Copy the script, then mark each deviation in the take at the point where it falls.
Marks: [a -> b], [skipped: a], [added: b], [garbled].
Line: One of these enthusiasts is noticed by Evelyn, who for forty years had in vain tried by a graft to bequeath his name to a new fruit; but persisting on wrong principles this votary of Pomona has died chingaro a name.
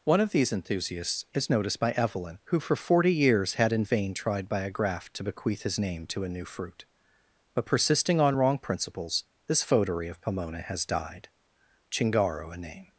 One of these enthusiasts is noticed by Evelyn, who for forty years had in vain tried by a graft to bequeath his name to a new fruit; but persisting on wrong principles this votary of Pomona has died chingaro a name.